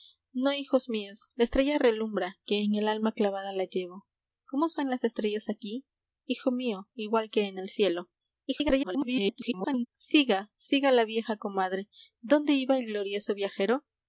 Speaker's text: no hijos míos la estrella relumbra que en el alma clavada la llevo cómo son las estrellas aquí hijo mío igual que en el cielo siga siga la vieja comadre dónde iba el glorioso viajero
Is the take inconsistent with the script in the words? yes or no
yes